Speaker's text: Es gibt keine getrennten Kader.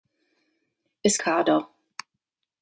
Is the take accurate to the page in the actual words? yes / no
no